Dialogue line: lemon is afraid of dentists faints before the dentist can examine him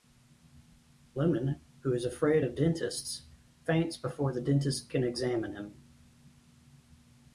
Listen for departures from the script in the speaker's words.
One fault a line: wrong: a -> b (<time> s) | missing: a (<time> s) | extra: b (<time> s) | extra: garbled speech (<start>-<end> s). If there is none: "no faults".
extra: who (1.8 s)